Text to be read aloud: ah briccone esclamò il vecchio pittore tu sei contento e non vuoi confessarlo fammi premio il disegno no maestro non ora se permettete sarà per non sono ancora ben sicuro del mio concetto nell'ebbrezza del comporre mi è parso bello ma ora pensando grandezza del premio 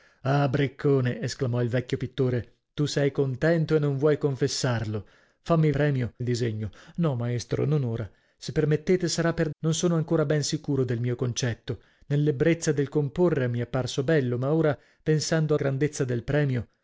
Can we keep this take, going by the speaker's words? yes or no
yes